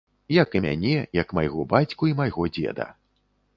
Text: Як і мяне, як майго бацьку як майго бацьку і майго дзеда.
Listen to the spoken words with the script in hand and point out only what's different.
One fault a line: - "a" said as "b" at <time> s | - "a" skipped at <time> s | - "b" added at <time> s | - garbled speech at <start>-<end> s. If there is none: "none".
- "як майго бацьку" skipped at 2.1 s